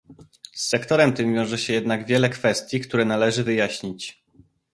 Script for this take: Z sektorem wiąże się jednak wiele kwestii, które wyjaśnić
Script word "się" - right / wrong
right